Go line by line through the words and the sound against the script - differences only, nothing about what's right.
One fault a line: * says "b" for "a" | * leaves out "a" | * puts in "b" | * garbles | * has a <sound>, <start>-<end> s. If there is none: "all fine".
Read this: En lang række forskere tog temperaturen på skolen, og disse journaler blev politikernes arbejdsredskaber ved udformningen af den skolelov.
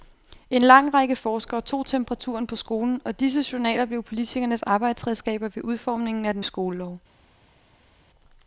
all fine